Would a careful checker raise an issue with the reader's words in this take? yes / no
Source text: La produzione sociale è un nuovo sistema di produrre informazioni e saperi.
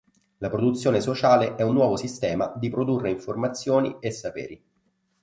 no